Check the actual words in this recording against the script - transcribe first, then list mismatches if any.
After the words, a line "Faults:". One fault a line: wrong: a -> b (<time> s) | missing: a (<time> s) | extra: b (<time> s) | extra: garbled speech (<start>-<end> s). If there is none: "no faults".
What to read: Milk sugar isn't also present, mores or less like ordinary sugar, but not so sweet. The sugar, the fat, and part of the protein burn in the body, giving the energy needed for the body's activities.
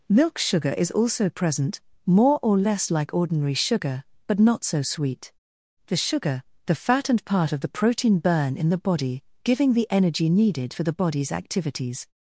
Milk sugar is also present, more or less like ordinary sugar, but not so sweet. The sugar, the fat, and part of the protein burn in the body, giving the energy needed for the body's activities.
Faults:
wrong: isn't -> is (0.8 s)
wrong: mores -> more (2.0 s)